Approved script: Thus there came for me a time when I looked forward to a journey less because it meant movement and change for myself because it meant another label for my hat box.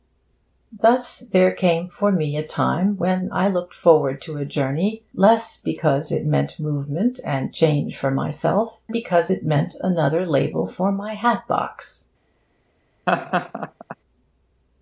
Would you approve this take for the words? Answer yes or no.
yes